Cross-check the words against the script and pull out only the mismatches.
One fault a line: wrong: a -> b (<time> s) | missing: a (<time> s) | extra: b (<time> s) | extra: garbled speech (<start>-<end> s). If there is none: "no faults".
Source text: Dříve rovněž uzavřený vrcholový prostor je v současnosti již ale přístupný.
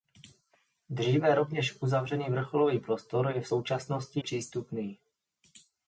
missing: již ale (4.2 s)